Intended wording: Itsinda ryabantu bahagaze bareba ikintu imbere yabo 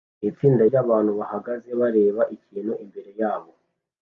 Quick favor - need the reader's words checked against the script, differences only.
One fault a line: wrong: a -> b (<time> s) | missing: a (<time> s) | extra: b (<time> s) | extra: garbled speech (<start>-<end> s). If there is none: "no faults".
no faults